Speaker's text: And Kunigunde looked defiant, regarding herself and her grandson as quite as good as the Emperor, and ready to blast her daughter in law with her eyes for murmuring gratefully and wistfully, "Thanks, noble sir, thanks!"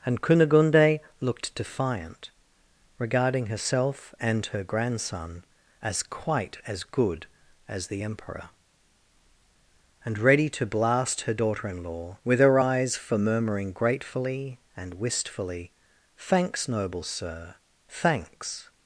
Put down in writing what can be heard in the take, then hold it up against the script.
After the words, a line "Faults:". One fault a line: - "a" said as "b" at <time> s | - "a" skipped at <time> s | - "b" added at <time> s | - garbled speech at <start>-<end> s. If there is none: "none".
And Kunigunde looked defiant, regarding herself and her grandson as quite as good as the Emperor, and ready to blast her daughter in law with her eyes for murmuring gratefully and wistfully, "Thanks, noble sir, thanks!"
Faults:
none